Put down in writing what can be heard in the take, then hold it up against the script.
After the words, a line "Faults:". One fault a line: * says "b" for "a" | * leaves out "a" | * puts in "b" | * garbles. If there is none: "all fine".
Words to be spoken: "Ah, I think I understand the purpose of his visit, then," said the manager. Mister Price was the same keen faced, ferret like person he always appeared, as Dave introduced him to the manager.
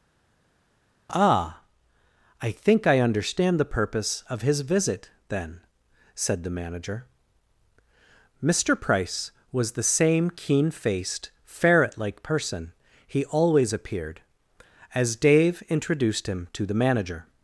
"Ah, I think I understand the purpose of his visit, then," said the manager. Mister Price was the same keen faced, ferret like person he always appeared, as Dave introduced him to the manager.
Faults:
all fine